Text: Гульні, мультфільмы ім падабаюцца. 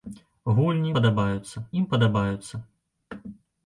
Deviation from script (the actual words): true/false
true